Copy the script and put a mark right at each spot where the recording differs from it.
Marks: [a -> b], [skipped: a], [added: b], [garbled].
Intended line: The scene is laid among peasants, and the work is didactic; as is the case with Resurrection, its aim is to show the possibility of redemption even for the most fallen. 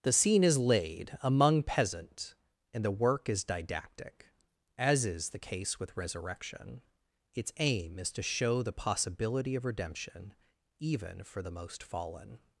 The scene is laid among [peasants, -> peasant] and the work is didactic; as is the case with Resurrection, its aim is to show the possibility of redemption even for the most fallen.